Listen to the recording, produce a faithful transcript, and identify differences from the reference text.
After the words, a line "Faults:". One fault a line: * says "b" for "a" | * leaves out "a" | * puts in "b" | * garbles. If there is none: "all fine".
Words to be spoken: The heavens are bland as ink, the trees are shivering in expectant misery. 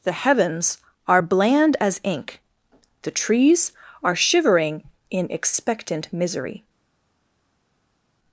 The heavens are bland as ink, the trees are shivering in expectant misery.
Faults:
all fine